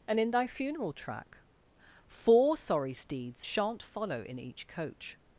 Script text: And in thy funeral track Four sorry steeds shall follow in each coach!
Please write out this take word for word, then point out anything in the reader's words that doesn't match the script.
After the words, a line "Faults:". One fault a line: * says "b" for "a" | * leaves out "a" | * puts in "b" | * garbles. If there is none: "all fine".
And in thy funeral track Four sorry steeds shan't follow in each coach!
Faults:
* says "shan't" for "shall"